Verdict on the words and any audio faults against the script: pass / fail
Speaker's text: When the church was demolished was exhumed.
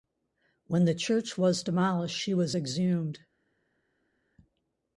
fail